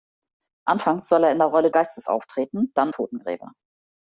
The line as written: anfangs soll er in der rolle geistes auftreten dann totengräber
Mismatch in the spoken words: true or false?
false